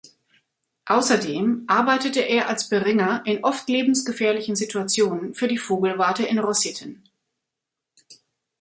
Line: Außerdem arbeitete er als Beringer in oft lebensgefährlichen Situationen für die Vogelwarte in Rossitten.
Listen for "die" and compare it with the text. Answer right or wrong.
right